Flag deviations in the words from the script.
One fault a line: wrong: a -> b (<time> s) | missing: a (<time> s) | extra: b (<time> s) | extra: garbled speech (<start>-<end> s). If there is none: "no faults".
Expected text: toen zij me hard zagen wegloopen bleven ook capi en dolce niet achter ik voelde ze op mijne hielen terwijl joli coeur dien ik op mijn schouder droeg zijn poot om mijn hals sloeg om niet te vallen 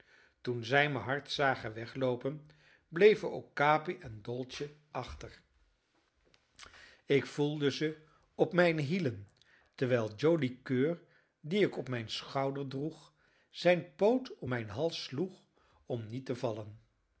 missing: niet (4.7 s)